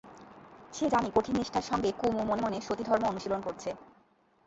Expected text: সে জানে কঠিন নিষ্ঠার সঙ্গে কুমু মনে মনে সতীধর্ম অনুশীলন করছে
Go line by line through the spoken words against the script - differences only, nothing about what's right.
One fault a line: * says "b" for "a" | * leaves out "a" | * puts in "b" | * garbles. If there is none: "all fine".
all fine